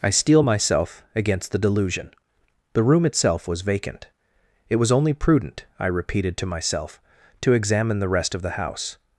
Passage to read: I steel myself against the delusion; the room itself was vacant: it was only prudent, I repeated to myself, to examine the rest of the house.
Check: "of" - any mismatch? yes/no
no